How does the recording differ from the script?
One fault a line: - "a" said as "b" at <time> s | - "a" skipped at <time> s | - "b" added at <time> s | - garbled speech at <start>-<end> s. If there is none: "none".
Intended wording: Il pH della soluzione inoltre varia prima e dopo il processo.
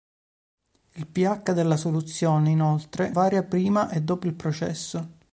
none